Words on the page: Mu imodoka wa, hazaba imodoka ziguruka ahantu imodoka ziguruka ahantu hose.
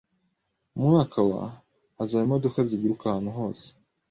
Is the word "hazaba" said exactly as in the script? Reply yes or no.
yes